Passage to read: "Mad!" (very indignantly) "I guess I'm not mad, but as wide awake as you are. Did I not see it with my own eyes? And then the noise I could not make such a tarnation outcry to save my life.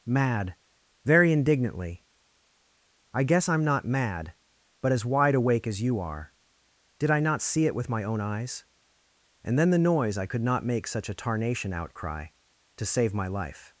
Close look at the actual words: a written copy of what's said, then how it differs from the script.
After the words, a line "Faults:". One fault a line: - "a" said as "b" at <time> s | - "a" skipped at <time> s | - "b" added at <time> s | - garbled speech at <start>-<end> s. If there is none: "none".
"Mad!" (very indignantly) "I guess I'm not mad, but as wide awake as you are. Did I not see it with my own eyes? And then the noise I could not make such a tarnation outcry to save my life.
Faults:
none